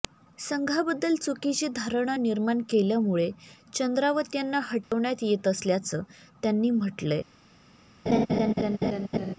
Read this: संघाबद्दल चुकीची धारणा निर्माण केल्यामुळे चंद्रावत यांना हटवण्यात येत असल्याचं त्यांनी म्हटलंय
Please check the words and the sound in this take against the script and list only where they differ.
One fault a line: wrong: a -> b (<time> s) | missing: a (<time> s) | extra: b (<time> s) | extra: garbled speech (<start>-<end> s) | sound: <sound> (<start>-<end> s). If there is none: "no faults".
sound: dropout (4.8-4.9 s)
sound: laugh (8.1-9.4 s)